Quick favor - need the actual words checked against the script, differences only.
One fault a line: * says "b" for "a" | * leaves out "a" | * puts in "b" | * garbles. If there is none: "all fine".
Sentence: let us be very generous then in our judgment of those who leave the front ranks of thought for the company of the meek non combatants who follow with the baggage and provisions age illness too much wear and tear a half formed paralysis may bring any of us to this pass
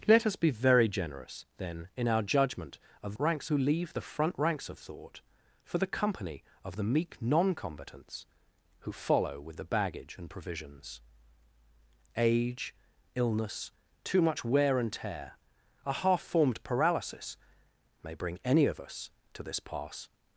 * says "ranks" for "those"